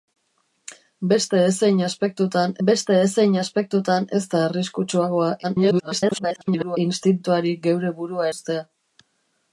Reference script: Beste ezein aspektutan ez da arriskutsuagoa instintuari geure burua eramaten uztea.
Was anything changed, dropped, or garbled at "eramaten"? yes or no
yes